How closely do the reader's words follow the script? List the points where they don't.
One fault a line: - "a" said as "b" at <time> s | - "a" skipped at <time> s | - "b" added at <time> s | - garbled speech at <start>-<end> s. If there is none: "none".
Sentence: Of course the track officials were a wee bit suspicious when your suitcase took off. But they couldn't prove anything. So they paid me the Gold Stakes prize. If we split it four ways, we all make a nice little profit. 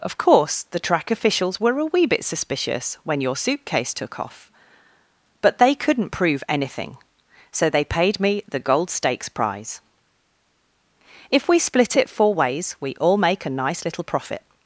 none